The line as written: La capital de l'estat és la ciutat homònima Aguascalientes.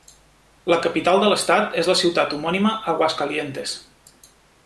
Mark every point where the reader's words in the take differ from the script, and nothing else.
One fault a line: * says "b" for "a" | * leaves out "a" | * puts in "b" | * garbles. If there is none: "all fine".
all fine